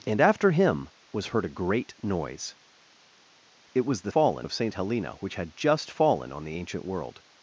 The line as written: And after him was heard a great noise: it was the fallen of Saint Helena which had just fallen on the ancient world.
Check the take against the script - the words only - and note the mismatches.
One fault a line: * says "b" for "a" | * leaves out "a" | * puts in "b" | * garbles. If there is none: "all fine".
all fine